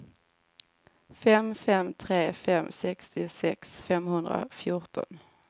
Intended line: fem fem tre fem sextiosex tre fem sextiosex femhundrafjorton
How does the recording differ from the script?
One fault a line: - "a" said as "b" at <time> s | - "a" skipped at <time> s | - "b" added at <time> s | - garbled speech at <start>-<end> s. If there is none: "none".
- "tre fem sextiosex" skipped at 3.8 s